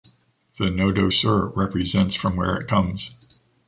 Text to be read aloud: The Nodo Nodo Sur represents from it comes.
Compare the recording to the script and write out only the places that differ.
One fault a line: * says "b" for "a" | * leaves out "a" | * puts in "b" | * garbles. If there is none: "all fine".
* leaves out "Nodo"
* puts in "where"